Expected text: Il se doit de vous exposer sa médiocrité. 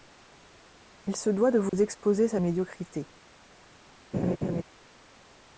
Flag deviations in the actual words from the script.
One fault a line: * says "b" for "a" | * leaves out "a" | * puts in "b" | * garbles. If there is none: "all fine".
all fine